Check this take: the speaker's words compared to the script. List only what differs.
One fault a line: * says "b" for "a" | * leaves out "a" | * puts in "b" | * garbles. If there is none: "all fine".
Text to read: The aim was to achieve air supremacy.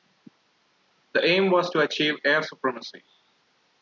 all fine